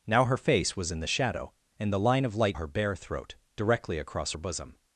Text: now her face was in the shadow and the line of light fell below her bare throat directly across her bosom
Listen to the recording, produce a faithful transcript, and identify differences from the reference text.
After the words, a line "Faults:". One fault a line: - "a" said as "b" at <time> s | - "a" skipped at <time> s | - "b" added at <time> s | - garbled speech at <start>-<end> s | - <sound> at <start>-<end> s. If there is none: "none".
now her face was in the shadow and the line of light her bare throat directly across her bosom
Faults:
- "fell below" skipped at 2.6 s